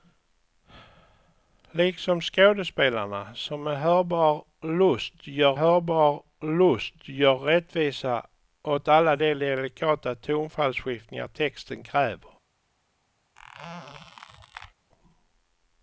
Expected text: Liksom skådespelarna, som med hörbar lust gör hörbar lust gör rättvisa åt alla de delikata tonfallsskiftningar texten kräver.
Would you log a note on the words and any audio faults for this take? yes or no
yes